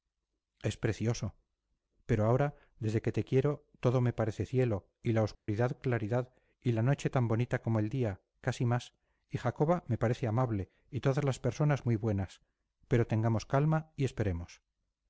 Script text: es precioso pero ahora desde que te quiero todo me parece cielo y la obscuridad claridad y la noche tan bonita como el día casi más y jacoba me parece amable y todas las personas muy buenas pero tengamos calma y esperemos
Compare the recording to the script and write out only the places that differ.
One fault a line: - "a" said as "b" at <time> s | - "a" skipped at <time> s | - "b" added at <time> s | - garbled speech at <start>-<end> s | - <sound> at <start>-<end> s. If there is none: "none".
- dropout at 5.3-5.5 s